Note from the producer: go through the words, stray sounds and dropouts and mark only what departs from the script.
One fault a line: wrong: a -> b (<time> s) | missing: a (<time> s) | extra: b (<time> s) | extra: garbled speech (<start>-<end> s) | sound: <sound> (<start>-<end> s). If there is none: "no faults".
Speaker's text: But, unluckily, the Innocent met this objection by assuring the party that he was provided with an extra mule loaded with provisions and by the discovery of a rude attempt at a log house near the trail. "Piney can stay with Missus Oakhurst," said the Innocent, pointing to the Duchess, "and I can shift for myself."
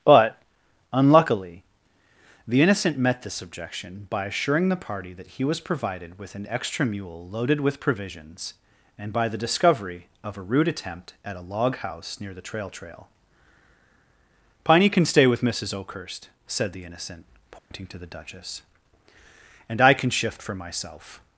extra: trail (12.7 s)
sound: dropout (17.6-17.7 s)